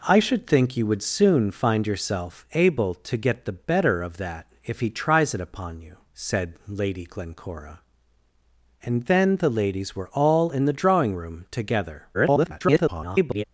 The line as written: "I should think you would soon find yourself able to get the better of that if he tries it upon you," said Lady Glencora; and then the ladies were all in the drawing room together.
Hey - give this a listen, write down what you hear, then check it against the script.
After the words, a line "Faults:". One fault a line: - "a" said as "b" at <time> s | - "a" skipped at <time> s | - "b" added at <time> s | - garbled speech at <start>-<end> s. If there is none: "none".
"I should think you would soon find yourself able to get the better of that if he tries it upon you," said Lady Glencora; and then the ladies were all in the drawing room together. [garbled]
Faults:
- garbled speech at 12.1-13.4 s